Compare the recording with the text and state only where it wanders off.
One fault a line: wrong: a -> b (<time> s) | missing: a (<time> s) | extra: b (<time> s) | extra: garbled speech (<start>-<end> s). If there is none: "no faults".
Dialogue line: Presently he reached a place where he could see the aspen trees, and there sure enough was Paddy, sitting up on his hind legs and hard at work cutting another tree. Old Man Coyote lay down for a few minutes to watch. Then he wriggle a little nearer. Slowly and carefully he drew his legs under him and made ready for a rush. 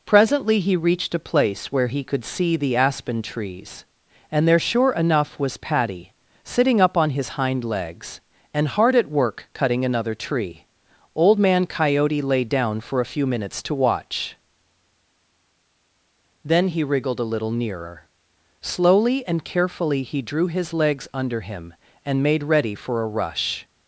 wrong: wriggle -> wriggled (16.8 s)